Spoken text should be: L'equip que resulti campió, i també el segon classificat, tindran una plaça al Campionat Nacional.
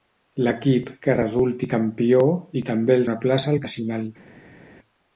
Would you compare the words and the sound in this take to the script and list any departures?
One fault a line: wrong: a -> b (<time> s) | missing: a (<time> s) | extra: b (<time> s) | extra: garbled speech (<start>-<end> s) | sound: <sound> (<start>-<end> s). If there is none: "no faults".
missing: segon classificat tindran (3.1 s)
missing: Campionat (3.6 s)